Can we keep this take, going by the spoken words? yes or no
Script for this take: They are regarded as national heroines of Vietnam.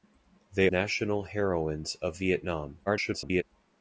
no